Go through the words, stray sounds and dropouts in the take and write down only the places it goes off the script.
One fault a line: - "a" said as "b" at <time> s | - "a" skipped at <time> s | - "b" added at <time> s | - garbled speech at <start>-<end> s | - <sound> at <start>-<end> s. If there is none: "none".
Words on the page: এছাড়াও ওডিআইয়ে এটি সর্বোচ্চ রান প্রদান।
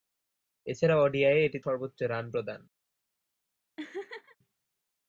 - laugh at 3.8-4.4 s